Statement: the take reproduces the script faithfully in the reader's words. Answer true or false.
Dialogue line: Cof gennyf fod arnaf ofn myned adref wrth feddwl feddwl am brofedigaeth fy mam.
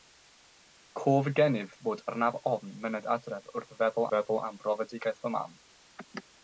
true